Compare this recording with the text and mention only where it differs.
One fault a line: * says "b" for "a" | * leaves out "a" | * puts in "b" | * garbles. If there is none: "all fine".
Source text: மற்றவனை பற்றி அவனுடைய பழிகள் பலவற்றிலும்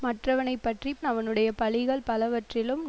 all fine